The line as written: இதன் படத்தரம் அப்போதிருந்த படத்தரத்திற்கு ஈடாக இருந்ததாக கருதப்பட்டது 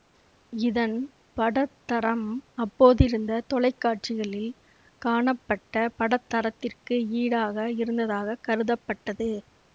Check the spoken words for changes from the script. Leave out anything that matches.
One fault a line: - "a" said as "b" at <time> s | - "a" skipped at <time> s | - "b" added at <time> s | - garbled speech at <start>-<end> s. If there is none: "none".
- "தொலைக்காட்சிகளில் காணப்பட்ட" added at 3.5 s